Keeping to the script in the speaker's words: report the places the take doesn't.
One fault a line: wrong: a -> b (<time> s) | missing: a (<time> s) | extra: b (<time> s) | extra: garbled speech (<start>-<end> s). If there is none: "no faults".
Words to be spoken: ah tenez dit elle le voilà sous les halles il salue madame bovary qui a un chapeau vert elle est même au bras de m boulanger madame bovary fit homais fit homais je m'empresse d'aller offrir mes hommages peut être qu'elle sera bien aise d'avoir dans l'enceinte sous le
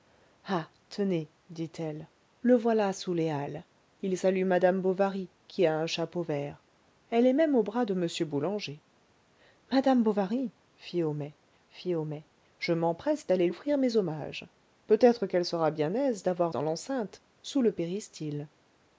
no faults